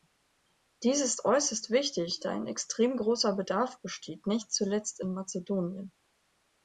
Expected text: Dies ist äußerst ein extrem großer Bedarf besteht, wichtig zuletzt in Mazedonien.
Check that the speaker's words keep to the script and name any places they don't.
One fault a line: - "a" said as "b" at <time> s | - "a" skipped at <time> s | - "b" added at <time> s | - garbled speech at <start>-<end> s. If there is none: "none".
- "wichtig da" added at 1.7 s
- "wichtig" said as "nicht" at 4.2 s